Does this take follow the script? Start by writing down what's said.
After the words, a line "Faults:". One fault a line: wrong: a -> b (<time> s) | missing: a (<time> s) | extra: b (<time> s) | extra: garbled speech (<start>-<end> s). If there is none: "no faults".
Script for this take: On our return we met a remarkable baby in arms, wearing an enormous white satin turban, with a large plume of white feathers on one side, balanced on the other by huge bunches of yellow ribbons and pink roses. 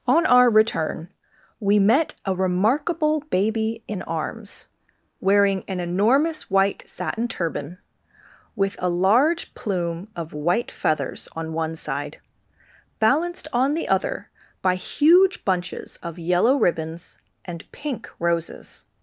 On our return we met a remarkable baby in arms, wearing an enormous white satin turban, with a large plume of white feathers on one side, balanced on the other by huge bunches of yellow ribbons and pink roses.
Faults:
no faults